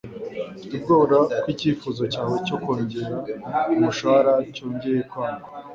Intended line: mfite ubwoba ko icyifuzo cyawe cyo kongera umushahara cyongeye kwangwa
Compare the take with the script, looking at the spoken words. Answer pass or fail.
pass